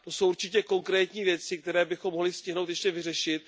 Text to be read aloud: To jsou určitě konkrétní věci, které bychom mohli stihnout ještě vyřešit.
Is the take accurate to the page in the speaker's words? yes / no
yes